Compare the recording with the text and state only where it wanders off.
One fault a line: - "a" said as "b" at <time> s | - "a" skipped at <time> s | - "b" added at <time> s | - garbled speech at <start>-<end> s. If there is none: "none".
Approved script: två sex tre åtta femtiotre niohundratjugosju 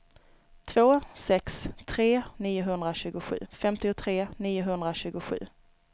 - "åtta" said as "niohundratjugosju" at 2.4 s